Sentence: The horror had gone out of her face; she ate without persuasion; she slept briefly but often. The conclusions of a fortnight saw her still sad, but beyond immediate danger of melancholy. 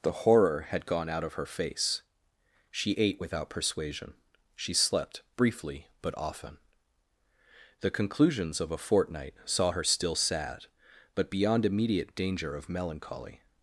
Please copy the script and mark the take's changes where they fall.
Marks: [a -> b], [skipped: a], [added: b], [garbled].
The horror had gone out of her face; she ate without persuasion; she slept briefly but often. The conclusions of a fortnight saw her still sad, but beyond immediate danger of melancholy.